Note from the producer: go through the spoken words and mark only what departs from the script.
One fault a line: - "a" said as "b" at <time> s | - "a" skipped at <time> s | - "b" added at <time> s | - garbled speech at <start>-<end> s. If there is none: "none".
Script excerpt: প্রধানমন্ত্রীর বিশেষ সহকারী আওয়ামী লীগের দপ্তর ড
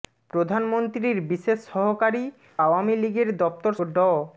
none